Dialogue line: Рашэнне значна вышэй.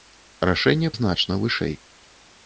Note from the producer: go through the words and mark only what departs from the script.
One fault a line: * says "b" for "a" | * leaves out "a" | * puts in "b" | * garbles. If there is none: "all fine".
all fine